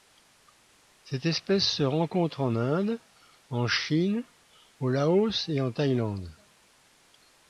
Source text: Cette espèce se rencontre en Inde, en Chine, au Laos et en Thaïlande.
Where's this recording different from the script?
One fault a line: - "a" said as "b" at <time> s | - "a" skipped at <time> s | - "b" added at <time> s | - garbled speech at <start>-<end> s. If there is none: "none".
none